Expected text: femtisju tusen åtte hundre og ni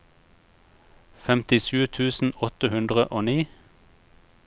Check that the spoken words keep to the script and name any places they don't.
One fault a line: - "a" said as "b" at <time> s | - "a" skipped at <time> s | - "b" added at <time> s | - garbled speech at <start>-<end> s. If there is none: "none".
none